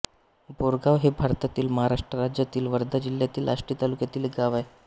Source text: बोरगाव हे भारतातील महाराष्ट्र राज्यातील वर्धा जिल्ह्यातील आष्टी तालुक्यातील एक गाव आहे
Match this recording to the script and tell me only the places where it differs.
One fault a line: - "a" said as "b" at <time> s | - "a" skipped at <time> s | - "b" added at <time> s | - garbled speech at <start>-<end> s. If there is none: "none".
none